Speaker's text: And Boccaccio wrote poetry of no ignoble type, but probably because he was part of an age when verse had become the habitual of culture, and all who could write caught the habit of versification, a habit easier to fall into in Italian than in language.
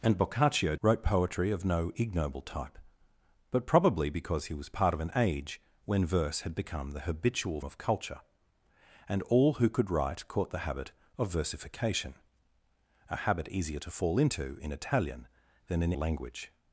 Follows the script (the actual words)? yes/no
yes